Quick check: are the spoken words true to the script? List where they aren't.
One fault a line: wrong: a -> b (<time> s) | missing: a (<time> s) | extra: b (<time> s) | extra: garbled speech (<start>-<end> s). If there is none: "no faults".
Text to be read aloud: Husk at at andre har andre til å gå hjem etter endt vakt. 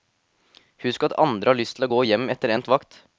missing: at (1.2 s)
wrong: andre -> lyst (1.6 s)